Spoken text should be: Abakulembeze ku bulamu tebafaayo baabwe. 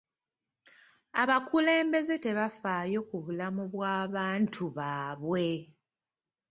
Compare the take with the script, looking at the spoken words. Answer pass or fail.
fail